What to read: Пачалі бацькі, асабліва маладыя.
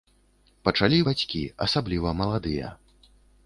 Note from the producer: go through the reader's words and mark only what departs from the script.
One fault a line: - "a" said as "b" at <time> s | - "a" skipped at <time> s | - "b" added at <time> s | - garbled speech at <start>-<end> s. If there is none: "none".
none